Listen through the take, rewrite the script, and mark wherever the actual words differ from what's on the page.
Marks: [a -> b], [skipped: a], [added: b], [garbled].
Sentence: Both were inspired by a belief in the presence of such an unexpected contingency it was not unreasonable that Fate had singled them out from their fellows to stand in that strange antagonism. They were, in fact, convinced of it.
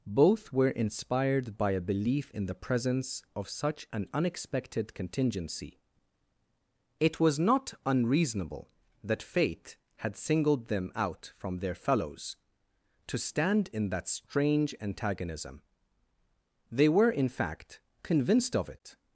Both were inspired by a belief in the presence of such an unexpected contingency it was not unreasonable that Fate had singled them out from their fellows to stand in that strange antagonism. They were, in fact, convinced of it.